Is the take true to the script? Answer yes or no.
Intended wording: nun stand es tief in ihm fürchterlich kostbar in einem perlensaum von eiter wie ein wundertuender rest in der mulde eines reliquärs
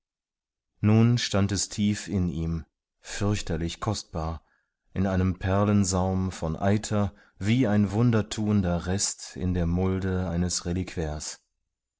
yes